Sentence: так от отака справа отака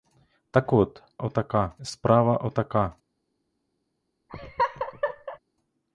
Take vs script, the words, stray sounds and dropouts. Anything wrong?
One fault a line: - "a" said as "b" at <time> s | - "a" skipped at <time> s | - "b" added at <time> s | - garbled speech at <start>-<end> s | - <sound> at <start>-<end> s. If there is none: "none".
- laugh at 4.3-5.4 s